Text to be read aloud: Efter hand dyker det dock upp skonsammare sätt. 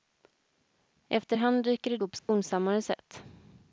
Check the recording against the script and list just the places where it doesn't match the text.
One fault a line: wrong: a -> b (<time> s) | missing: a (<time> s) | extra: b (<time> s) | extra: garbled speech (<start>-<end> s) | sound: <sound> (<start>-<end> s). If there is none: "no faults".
missing: dock (2.0 s)
sound: dropout (2.2-2.3 s)